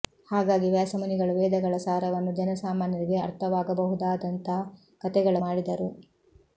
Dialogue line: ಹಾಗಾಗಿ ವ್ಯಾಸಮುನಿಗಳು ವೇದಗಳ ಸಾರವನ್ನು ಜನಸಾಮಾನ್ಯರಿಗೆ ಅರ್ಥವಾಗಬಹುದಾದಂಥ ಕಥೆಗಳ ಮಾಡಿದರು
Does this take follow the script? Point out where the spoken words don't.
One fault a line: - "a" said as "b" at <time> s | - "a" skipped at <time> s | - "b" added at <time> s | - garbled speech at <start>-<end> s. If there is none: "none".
none